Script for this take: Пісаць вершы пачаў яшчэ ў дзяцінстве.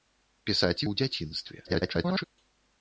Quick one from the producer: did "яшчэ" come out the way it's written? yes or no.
no